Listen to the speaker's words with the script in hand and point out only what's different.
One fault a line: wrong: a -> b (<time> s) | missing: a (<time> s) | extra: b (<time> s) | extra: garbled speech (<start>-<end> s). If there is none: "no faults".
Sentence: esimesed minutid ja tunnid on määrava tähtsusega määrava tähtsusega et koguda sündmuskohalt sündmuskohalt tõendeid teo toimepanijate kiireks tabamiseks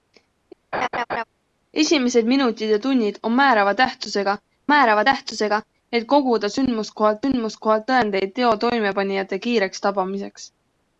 no faults